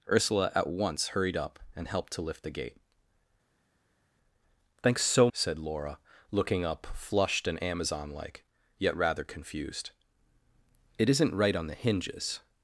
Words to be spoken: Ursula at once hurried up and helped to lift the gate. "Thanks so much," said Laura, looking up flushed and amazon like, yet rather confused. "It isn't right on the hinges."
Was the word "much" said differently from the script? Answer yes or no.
yes